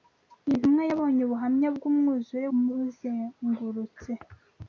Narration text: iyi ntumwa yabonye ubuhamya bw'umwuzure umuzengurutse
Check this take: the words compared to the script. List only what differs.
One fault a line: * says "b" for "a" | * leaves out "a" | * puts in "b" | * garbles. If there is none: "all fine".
all fine